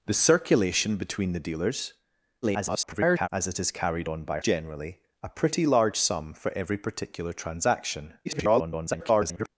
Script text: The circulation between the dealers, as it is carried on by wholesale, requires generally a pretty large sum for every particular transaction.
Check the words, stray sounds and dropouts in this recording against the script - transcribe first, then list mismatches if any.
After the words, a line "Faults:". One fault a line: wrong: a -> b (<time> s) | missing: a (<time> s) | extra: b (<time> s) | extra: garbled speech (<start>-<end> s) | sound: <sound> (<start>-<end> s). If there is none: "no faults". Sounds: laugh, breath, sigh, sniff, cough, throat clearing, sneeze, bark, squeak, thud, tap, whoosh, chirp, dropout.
The circulation between the dealers, [garbled] as it is carried on by generally a pretty large sum for every particular transaction. [garbled]
Faults:
extra: garbled speech (2.4-3.3 s)
missing: wholesale requires (4.4 s)
extra: garbled speech (8.2-9.5 s)